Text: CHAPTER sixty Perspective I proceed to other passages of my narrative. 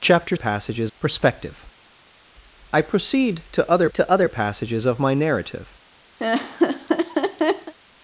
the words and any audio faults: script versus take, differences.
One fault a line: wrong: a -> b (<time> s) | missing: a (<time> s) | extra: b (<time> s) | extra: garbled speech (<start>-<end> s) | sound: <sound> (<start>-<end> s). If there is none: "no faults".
wrong: sixty -> passages (0.3 s)
extra: to other (3.9 s)
sound: laugh (6.2-7.7 s)